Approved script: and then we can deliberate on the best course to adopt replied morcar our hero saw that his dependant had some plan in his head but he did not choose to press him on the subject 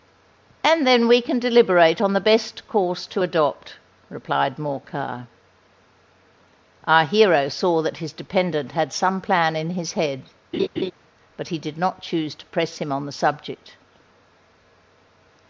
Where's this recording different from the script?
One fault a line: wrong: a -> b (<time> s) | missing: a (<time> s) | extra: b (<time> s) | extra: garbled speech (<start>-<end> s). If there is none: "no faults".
no faults